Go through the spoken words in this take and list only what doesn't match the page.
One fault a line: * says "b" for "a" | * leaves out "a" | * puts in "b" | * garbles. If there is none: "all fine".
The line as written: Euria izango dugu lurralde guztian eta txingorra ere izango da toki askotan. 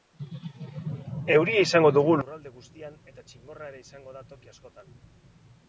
all fine